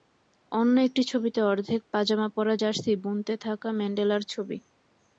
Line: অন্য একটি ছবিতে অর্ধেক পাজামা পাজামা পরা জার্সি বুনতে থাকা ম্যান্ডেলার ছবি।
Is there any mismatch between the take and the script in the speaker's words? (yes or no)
yes